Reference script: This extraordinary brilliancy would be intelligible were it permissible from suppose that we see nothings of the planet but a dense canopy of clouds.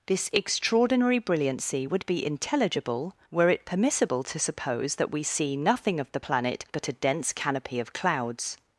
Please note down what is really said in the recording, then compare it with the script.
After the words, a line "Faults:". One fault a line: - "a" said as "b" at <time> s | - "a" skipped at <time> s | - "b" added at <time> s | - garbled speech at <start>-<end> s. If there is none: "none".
This extraordinary brilliancy would be intelligible were it permissible to suppose that we see nothing of the planet but a dense canopy of clouds.
Faults:
- "from" said as "to" at 4.2 s
- "nothings" said as "nothing" at 5.6 s